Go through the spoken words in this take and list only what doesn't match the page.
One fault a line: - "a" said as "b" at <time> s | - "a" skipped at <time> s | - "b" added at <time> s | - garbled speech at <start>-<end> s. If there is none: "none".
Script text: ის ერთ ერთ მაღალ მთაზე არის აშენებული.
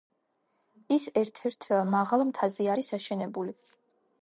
none